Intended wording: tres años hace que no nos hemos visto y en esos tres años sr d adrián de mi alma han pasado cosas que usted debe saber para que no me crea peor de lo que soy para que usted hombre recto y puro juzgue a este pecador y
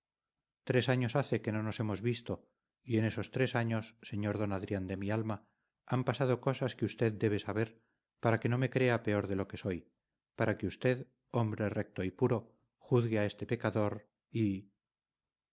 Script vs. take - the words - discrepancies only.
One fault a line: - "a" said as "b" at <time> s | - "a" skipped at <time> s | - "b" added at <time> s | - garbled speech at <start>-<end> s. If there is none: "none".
none